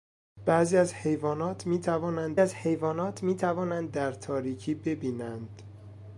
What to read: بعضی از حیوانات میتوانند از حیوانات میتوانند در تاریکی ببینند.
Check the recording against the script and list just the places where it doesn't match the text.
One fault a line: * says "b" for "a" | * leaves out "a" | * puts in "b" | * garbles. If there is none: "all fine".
all fine